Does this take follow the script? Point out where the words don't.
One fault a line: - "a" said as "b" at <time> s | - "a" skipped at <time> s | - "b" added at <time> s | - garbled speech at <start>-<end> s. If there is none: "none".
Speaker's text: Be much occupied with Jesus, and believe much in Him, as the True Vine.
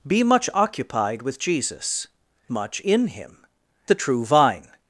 - "and believe" skipped at 2.1 s
- "as" skipped at 3.4 s